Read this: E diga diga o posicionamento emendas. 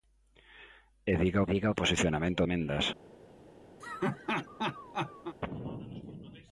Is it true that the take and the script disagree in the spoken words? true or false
false